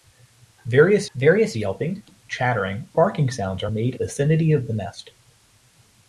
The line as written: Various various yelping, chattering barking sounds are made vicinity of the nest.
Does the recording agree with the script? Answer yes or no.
yes